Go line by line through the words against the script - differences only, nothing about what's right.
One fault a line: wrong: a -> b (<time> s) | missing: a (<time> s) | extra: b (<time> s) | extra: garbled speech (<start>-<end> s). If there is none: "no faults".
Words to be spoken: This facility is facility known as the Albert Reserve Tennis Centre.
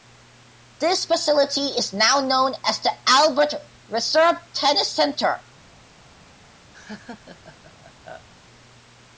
wrong: facility -> now (1.9 s)